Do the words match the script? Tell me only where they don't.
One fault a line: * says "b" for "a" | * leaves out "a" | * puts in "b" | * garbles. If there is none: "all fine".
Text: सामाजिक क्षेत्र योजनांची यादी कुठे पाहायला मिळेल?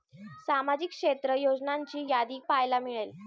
* leaves out "कुठे"